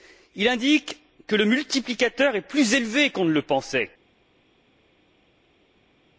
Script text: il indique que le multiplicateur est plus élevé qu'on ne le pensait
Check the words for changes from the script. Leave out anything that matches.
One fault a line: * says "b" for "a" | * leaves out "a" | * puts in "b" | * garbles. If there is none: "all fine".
all fine